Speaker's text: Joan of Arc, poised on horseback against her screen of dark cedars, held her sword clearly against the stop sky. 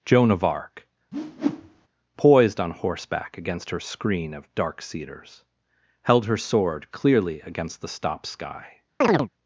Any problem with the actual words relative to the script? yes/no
no